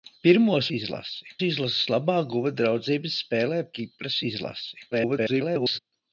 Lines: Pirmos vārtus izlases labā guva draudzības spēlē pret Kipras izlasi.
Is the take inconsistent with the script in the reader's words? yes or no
yes